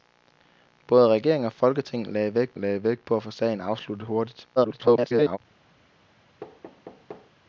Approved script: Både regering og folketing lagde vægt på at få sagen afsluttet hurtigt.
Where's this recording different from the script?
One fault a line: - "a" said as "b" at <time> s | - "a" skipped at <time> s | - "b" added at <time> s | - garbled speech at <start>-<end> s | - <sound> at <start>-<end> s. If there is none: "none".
- "lagde vægt" added at 2.5 s
- garbled speech at 4.6-5.4 s
- thud at 6.4-7.3 s